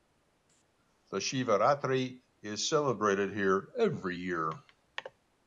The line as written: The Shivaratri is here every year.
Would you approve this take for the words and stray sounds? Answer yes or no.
no